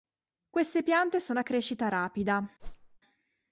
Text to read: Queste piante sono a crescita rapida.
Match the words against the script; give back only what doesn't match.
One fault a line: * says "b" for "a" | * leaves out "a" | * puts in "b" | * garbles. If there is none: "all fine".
all fine